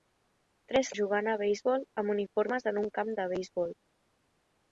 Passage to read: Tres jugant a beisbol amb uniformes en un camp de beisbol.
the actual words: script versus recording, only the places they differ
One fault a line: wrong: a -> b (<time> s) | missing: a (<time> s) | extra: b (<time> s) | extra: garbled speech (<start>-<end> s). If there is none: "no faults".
no faults